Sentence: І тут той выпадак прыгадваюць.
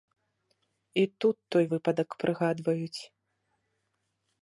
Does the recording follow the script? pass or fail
pass